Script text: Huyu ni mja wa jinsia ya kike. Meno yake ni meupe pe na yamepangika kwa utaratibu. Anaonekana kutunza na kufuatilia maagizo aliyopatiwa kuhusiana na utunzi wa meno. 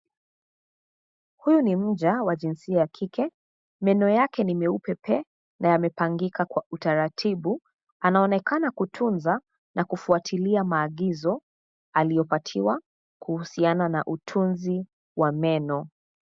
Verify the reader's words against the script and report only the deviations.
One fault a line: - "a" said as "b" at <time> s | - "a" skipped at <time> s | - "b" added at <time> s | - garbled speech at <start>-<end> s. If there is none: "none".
none